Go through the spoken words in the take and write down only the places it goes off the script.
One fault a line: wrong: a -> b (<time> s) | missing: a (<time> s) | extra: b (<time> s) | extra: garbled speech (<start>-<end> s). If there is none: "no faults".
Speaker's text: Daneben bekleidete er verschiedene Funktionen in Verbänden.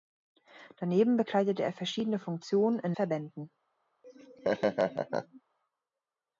no faults